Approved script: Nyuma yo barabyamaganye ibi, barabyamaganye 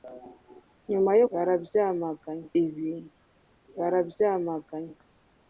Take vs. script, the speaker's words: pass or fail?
pass